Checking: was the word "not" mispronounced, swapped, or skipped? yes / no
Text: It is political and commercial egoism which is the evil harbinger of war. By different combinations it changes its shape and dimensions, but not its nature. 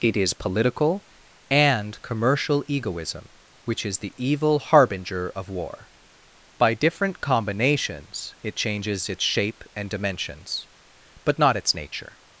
no